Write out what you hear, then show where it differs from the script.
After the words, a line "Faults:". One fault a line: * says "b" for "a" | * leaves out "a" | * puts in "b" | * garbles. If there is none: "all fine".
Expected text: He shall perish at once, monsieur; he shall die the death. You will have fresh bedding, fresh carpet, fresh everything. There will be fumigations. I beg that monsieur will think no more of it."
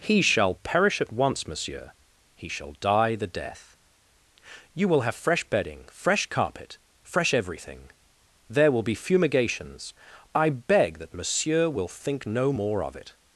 He shall perish at once, monsieur; he shall die the death. You will have fresh bedding, fresh carpet, fresh everything. There will be fumigations. I beg that monsieur will think no more of it."
Faults:
all fine